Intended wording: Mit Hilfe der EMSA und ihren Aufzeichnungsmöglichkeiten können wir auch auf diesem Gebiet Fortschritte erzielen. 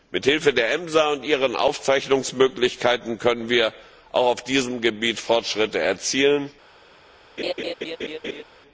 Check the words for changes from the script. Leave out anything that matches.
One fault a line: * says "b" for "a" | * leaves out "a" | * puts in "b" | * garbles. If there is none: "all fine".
all fine